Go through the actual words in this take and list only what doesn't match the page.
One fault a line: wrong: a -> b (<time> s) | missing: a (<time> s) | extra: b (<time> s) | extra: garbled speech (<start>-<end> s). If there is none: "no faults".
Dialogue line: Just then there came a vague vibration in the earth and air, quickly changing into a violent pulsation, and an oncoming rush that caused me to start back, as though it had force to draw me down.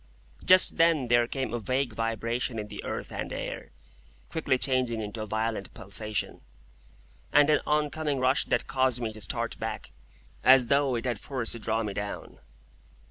no faults